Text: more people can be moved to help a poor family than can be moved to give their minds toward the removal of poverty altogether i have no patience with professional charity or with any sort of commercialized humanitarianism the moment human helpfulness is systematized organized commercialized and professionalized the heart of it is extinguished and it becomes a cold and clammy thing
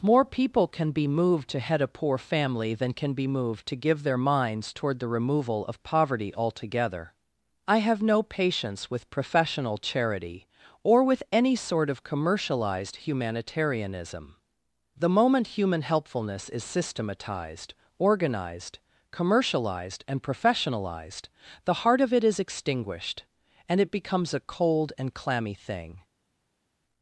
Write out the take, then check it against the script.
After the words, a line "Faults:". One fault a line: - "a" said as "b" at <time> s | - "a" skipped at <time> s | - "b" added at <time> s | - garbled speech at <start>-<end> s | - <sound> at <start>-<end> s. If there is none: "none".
more people can be moved to head a poor family than can be moved to give their minds toward the removal of poverty altogether i have no patience with professional charity or with any sort of commercialized humanitarianism the moment human helpfulness is systematized organized commercialized and professionalized the heart of it is extinguished and it becomes a cold and clammy thing
Faults:
- "help" said as "head" at 1.6 s